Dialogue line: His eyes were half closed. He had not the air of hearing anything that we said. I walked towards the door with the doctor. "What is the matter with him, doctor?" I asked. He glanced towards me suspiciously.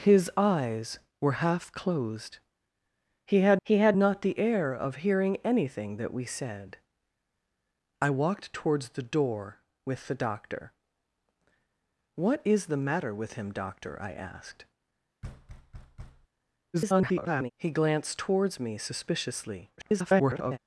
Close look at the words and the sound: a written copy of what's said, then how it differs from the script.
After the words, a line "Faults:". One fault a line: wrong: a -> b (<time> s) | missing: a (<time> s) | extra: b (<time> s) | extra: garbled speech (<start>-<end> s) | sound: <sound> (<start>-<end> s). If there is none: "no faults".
His eyes were half closed. He had he had not the air of hearing anything that we said. I walked towards the door with the doctor. "What is the matter with him, doctor?" I asked. [garbled] He glanced towards me suspiciously. [garbled]
Faults:
extra: he had (3.6 s)
sound: thud (15.2-16.3 s)
extra: garbled speech (16.7-17.5 s)
extra: garbled speech (19.8-20.6 s)